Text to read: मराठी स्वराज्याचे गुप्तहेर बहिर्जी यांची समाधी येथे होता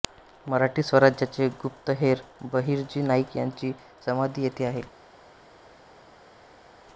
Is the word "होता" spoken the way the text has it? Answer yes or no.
no